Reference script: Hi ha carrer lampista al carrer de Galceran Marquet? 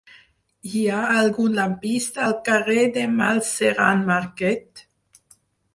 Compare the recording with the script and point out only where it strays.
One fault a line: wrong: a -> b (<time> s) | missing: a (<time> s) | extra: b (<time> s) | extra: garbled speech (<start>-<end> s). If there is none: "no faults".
wrong: carrer -> algun (1.2 s)